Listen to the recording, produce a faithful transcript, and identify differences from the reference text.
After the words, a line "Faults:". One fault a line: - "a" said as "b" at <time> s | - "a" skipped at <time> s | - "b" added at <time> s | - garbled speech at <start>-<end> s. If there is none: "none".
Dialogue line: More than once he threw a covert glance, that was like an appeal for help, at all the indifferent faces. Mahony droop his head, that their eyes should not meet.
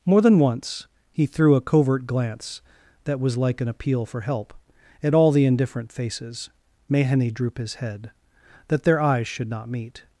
More than once he threw a covert glance, that was like an appeal for help, at all the indifferent faces. Mahony droop his head, that their eyes should not meet.
Faults:
none